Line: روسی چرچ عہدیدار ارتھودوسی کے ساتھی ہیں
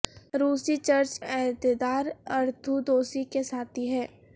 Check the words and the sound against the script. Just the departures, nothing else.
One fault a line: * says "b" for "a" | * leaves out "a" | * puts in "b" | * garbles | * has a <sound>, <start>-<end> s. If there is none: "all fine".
all fine